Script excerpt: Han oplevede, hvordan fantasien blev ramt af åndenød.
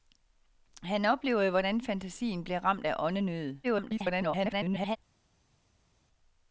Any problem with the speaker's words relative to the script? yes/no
yes